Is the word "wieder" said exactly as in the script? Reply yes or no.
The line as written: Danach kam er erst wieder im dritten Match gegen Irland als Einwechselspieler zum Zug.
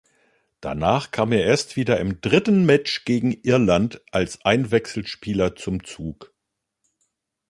yes